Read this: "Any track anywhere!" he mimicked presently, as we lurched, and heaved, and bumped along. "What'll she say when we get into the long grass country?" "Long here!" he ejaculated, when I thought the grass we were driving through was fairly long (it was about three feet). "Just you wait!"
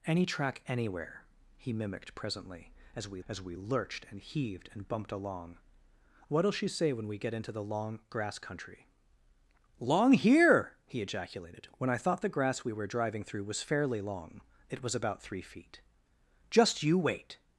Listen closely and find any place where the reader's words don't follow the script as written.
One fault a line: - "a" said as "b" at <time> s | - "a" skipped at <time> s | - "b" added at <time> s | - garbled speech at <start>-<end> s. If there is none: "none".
- "as we" added at 3.3 s